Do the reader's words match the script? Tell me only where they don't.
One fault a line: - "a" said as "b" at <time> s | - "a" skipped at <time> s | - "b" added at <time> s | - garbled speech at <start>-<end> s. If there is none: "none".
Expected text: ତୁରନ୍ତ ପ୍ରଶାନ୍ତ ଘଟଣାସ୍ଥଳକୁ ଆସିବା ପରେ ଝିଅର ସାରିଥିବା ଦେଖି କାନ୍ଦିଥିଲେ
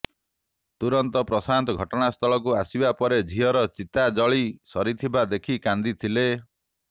- "ଚିତା ଜଳି" added at 3.7 s